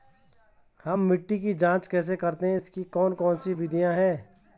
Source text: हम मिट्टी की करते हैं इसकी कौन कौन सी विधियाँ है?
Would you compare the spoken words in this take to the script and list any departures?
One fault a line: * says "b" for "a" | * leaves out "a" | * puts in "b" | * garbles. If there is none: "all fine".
* puts in "जांच कैसे"